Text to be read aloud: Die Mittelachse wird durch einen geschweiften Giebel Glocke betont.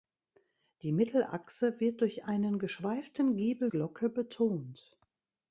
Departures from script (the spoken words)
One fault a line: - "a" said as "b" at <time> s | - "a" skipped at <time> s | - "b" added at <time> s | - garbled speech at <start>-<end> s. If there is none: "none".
none